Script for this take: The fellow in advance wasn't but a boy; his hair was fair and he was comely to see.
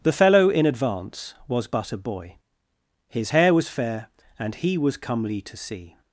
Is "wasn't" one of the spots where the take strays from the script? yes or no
yes